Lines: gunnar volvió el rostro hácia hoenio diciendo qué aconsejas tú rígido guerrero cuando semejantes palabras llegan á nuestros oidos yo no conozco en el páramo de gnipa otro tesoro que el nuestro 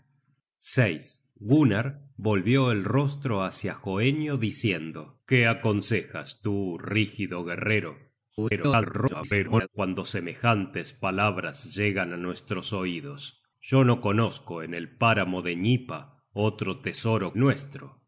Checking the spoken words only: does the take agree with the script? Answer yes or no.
no